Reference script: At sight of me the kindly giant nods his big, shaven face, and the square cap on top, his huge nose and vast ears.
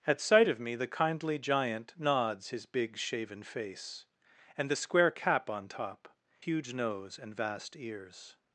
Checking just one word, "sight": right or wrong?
right